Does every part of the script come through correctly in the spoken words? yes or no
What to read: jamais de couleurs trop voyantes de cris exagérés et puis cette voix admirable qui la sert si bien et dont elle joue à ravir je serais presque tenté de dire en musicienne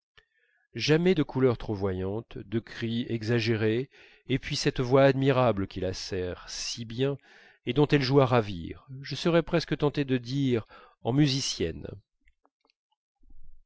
yes